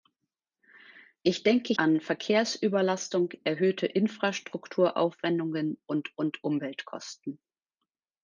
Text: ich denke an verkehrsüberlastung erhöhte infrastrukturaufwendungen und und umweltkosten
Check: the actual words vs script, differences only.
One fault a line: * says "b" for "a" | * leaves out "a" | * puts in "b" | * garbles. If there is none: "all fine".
all fine